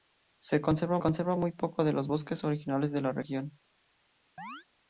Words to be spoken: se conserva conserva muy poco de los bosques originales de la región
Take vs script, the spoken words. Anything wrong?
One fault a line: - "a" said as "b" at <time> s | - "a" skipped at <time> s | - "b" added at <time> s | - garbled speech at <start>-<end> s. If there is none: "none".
none